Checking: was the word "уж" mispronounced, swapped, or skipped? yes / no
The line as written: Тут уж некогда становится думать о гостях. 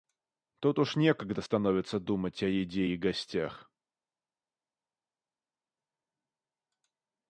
no